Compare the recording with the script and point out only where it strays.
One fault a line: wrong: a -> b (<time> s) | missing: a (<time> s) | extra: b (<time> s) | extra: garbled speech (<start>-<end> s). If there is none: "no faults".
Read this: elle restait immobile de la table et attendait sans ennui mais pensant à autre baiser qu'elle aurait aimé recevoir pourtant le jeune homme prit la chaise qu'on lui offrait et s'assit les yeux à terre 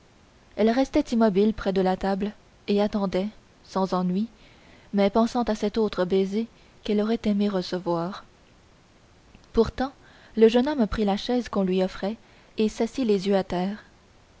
extra: près (1.5 s)
extra: cet (5.5 s)